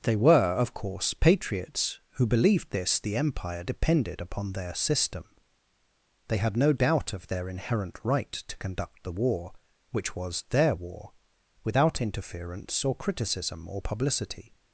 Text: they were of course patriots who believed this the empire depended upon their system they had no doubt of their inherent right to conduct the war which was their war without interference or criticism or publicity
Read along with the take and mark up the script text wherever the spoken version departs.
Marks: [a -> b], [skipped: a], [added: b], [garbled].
they were of course patriots who believed this the empire depended upon their system they had no doubt of their inherent right to conduct the war which was their war without interference or criticism or publicity